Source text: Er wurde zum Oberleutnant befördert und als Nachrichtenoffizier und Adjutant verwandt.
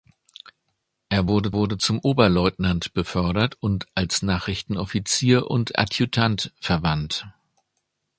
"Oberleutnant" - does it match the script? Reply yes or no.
yes